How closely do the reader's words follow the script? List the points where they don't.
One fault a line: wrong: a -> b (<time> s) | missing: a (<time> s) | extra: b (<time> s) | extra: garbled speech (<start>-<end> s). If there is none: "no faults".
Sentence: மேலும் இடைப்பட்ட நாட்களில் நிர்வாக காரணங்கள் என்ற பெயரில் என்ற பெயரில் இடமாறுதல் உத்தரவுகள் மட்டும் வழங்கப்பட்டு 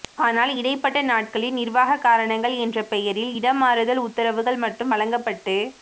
wrong: மேலும் -> ஆனால் (0.2 s)
missing: என்ற பெயரில் (3.3 s)